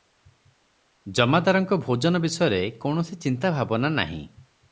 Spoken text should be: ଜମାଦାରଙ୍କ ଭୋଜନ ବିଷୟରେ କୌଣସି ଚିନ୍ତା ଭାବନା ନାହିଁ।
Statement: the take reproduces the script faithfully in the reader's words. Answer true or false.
true